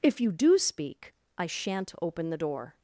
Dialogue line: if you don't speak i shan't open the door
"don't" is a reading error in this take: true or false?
true